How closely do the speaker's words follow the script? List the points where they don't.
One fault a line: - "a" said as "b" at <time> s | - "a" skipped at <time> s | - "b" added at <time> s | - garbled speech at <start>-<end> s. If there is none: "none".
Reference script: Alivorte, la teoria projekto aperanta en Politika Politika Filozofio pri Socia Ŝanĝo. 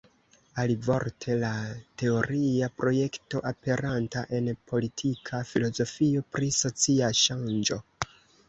- "Politika" skipped at 5.5 s